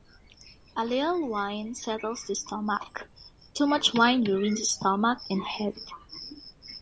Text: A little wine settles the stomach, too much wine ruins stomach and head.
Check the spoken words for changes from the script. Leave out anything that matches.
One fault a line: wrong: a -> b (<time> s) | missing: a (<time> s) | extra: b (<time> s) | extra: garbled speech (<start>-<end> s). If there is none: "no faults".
no faults